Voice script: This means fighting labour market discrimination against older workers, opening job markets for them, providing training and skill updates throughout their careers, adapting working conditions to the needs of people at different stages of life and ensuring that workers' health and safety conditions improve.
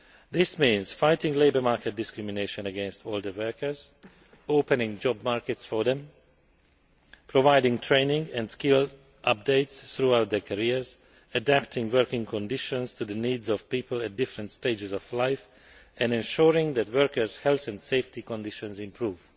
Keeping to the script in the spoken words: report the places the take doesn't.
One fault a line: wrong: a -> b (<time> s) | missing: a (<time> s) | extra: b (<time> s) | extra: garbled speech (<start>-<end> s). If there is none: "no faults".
no faults